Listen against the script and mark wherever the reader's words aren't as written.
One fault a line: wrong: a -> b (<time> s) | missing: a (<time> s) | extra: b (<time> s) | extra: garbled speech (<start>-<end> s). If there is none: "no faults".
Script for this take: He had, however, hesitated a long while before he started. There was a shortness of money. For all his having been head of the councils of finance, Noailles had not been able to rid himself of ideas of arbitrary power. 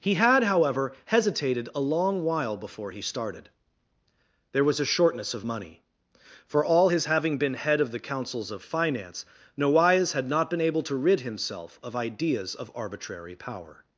no faults